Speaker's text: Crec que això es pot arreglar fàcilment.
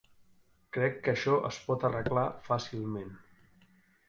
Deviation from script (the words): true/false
false